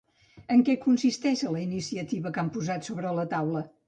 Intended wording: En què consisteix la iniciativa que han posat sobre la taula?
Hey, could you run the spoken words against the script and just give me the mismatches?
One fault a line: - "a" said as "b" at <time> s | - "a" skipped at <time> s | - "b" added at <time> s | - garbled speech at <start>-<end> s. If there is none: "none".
none